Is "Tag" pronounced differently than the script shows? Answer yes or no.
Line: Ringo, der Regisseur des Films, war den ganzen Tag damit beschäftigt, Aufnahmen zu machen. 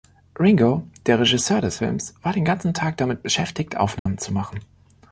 no